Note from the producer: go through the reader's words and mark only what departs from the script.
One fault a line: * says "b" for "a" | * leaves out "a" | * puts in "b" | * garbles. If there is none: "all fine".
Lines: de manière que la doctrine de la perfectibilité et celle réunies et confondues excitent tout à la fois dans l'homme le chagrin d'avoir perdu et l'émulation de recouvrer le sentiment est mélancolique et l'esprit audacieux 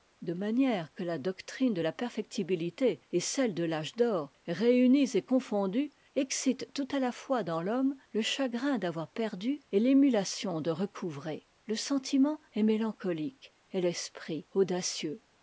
* puts in "de l'âge d'or"